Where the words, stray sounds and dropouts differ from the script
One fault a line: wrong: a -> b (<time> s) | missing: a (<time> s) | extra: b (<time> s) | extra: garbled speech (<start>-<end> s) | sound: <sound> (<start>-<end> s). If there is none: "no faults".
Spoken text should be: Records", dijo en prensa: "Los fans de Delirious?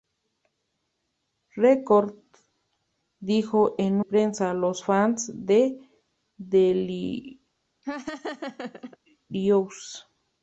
sound: laugh (7.8-9.0 s)